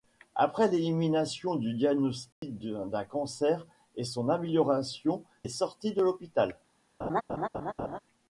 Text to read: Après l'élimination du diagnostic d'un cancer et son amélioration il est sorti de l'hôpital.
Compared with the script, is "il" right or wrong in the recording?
wrong